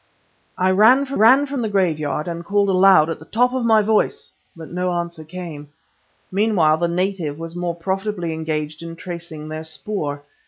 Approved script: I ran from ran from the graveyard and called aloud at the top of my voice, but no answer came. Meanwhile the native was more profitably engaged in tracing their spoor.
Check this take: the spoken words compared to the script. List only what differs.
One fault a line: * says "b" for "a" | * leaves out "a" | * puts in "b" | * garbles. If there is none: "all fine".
all fine